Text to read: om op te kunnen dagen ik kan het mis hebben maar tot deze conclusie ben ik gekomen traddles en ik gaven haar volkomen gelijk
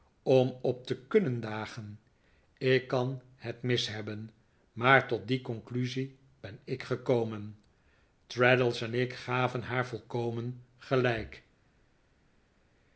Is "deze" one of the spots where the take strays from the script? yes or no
yes